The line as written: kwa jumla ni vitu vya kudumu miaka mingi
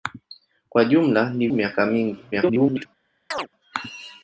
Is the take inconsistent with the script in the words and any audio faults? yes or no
yes